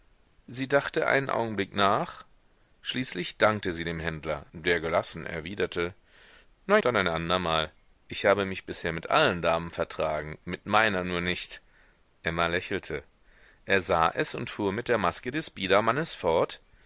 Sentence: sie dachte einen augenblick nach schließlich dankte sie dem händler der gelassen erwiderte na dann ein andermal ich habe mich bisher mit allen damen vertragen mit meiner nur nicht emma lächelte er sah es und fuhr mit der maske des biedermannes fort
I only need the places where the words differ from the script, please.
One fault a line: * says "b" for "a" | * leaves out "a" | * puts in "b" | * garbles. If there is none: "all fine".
all fine